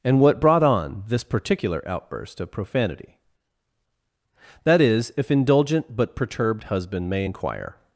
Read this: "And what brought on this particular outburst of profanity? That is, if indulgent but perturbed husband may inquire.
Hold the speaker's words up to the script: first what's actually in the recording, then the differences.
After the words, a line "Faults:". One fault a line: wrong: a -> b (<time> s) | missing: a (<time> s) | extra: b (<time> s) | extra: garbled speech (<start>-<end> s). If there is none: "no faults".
"And what brought on this particular outburst of profanity? That is, if indulgent but perturbed husband may inquire.
Faults:
no faults